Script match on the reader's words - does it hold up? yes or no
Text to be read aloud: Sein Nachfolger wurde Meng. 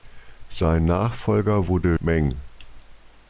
yes